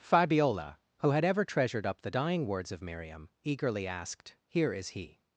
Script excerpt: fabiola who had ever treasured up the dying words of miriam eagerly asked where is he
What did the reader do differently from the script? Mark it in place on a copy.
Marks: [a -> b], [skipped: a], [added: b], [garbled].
fabiola who had ever treasured up the dying words of miriam eagerly asked [where -> here] is he